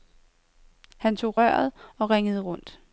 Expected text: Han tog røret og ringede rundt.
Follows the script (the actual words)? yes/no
yes